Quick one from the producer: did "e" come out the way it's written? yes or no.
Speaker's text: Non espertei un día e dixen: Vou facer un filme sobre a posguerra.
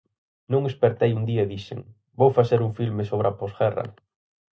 yes